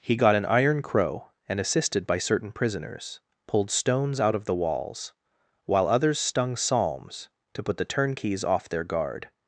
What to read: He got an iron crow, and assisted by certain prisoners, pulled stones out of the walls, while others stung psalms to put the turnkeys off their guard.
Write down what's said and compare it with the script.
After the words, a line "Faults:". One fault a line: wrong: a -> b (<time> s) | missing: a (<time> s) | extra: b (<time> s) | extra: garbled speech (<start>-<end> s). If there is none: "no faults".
He got an iron crow, and assisted by certain prisoners, pulled stones out of the walls, while others stung psalms to put the turnkeys off their guard.
Faults:
no faults